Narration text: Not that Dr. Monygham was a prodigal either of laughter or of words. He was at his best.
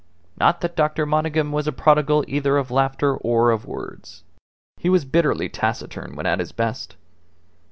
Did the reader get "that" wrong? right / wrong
right